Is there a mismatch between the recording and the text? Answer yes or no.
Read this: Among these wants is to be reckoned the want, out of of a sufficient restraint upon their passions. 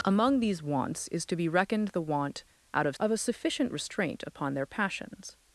no